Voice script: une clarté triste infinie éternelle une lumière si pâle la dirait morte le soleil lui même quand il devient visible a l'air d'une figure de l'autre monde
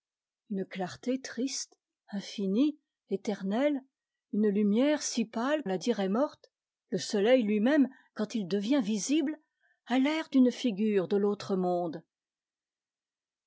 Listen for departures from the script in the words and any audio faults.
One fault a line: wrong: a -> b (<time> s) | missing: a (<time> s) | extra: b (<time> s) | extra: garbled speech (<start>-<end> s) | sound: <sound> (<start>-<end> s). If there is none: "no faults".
no faults